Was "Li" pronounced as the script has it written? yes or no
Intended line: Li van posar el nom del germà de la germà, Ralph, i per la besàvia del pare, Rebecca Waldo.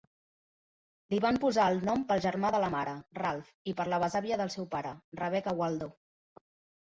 yes